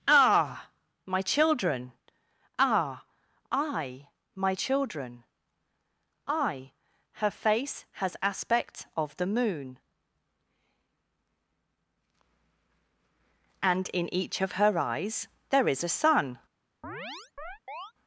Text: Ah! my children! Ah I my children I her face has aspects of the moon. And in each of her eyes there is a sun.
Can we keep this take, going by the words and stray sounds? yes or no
no